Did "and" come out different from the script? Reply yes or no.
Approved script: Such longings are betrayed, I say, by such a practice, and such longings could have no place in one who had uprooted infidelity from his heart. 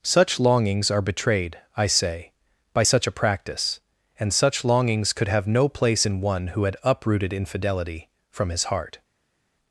no